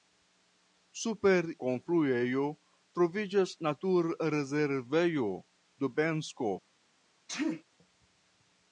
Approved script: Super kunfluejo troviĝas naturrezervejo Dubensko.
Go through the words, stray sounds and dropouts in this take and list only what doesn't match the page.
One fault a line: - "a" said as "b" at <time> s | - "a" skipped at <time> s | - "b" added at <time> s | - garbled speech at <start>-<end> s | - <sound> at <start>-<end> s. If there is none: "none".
- sneeze at 7.3-7.6 s